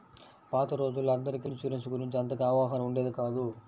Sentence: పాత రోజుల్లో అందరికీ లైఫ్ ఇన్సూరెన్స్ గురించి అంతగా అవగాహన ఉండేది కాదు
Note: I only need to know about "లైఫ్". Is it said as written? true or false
false